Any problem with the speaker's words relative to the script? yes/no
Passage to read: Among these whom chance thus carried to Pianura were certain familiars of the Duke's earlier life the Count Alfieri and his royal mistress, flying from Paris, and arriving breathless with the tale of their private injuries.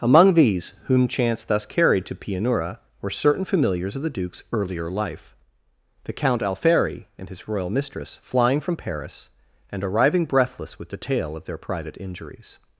no